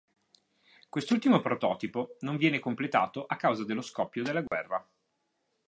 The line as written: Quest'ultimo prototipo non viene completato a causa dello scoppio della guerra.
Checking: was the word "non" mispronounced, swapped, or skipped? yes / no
no